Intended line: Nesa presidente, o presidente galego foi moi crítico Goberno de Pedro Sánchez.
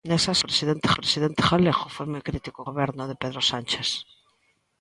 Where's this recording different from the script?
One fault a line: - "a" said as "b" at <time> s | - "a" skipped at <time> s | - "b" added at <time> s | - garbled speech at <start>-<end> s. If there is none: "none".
none